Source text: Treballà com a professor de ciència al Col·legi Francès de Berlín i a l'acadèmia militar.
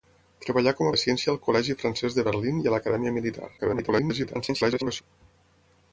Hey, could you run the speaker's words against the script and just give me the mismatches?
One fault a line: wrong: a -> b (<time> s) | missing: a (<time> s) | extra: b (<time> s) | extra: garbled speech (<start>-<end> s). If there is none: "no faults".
missing: professor (0.9 s)
extra: garbled speech (3.6-5.0 s)